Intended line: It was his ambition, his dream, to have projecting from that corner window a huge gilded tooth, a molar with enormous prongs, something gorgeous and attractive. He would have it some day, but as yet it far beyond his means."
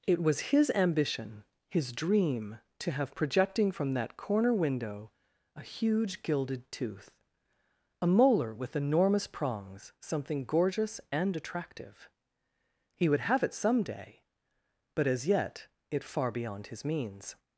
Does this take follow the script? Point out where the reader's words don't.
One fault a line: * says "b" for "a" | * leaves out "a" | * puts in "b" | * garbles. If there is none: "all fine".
all fine